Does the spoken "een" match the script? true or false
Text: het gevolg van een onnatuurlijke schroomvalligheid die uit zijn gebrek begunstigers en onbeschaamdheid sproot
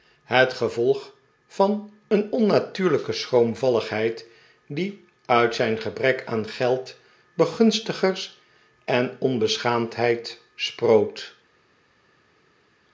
true